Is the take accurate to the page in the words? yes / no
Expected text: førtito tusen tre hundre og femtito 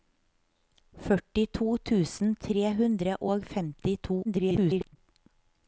no